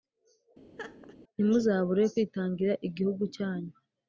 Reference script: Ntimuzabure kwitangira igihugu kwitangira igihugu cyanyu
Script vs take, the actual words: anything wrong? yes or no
yes